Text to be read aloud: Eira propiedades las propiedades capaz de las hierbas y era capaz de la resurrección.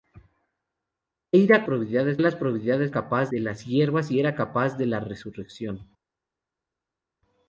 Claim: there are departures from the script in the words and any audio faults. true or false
false